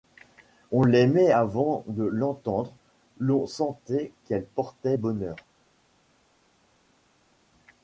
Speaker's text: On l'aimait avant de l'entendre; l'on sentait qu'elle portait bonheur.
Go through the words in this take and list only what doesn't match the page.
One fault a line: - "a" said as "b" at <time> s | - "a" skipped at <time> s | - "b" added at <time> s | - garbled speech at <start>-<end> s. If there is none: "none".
none